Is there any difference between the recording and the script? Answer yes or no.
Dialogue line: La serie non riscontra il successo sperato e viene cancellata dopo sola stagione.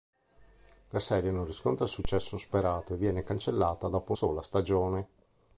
no